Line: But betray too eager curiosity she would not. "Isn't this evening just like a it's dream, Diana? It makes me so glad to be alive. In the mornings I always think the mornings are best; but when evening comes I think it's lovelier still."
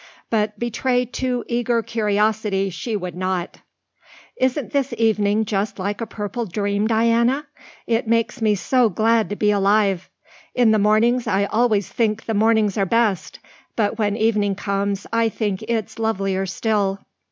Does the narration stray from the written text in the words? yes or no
yes